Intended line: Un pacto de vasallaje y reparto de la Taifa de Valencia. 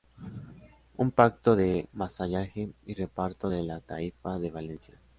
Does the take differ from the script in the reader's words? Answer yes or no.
no